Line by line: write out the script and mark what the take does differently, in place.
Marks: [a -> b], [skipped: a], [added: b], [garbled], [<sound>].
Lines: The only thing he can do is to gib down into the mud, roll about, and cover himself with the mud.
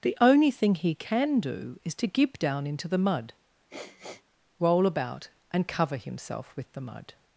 The only thing he can do is to gib down into the mud, [sniff] roll about, and cover himself with the mud.